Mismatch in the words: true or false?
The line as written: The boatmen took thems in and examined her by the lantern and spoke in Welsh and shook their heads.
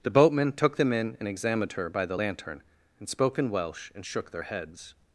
true